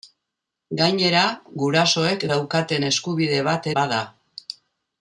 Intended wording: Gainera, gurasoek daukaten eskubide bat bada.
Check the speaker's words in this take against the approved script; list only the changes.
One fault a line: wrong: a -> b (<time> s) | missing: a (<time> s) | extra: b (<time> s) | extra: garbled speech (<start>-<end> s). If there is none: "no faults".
no faults